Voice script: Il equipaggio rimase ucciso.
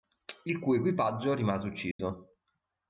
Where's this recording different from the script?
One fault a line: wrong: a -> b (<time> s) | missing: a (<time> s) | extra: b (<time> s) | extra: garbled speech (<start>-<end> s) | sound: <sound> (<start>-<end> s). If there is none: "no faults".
extra: cui (0.6 s)
sound: dropout (1.9-2.0 s)